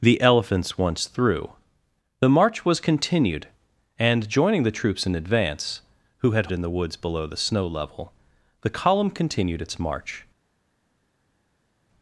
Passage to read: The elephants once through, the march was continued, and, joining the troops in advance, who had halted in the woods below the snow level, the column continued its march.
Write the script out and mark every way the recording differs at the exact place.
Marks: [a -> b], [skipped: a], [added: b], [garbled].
The elephants once through, the march was continued, and, joining the troops in advance, who had [skipped: halted] in the woods below the snow level, the column continued its march.